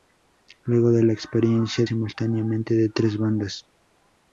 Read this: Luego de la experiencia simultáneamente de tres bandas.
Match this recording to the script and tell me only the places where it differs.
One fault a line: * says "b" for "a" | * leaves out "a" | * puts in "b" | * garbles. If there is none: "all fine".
all fine